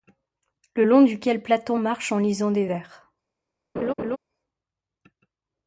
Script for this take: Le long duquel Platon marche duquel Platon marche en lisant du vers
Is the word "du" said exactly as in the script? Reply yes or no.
no